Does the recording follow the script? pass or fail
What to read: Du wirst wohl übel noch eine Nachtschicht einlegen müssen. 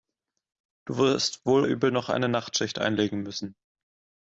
pass